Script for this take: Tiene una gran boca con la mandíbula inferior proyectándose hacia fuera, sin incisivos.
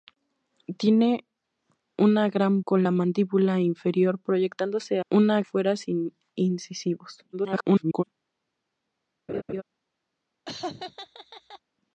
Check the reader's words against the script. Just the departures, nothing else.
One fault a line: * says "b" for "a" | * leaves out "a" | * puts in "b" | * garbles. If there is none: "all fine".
* leaves out "boca"
* says "una" for "hacia"
* garbles